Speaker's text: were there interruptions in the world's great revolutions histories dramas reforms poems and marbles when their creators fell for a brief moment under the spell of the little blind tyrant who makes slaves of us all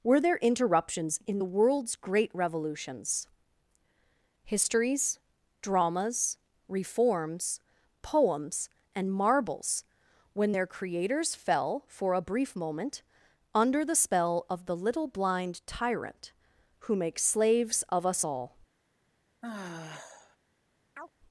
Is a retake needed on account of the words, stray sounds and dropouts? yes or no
yes